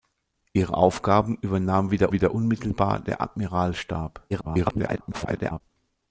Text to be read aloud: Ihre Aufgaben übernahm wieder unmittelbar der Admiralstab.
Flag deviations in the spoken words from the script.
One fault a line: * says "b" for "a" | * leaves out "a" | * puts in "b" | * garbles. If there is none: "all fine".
* puts in "wieder"
* garbles